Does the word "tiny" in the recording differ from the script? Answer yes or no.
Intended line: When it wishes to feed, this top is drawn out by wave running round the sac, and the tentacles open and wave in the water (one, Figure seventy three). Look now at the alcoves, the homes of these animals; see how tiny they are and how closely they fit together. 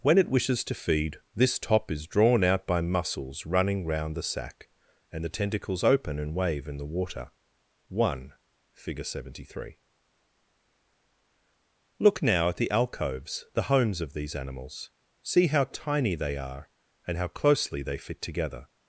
no